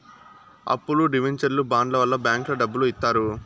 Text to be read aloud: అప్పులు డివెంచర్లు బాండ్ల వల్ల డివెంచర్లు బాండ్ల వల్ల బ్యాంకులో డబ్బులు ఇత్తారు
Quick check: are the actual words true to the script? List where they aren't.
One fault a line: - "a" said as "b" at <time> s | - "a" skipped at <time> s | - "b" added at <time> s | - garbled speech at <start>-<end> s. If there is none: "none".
- "డివెంచర్లు బాండ్ల వల్ల" skipped at 2.2 s